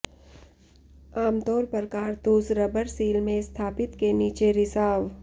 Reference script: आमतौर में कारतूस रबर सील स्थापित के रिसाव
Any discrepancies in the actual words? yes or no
yes